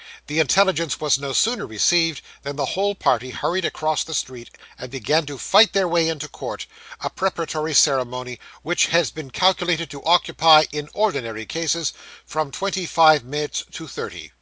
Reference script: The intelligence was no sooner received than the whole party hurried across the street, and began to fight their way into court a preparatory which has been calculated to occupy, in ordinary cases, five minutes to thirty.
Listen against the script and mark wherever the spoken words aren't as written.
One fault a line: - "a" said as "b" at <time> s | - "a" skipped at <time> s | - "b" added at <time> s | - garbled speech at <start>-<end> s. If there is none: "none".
- "ceremony" added at 7.7 s
- "from twenty" added at 12.3 s